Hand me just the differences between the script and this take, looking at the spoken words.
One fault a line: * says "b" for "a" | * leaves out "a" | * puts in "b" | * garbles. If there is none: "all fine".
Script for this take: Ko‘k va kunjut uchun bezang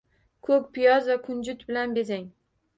* puts in "piyoz"
* says "bilan" for "uchun"